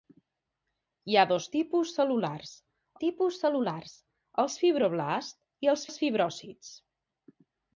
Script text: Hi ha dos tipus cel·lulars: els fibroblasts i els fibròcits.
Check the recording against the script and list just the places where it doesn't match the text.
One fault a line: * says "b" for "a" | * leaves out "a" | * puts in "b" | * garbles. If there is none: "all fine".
* puts in "tipus cel·lulars"
* puts in "els"